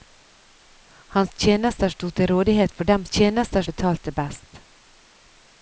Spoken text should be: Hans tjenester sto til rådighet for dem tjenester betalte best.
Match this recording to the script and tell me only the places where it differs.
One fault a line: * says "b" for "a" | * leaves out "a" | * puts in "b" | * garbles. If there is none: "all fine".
all fine